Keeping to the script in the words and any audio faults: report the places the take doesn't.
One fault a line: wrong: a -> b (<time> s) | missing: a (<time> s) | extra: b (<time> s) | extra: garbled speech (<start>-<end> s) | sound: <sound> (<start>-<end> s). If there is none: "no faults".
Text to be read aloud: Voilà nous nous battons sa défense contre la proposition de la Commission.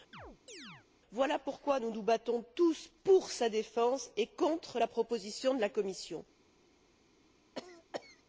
sound: chirp (0.1-0.9 s)
extra: pourquoi (1.4 s)
extra: tous pour (2.5 s)
extra: et (4.2 s)
sound: cough (7.5-8.2 s)